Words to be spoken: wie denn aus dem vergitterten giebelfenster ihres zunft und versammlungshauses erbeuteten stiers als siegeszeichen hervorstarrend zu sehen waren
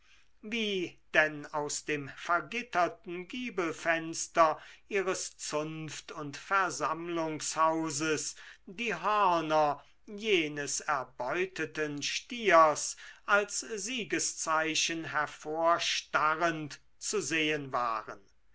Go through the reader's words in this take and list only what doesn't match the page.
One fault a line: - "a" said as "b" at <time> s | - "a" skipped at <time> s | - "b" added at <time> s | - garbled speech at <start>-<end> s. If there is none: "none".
- "die hörner jenes" added at 8.7 s